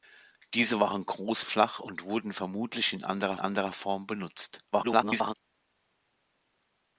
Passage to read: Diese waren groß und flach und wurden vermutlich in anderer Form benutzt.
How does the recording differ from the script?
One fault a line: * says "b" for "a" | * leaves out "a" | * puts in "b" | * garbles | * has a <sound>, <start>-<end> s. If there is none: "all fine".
* leaves out "und"
* puts in "anderer"
* garbles